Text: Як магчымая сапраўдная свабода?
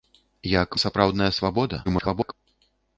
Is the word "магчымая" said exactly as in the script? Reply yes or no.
no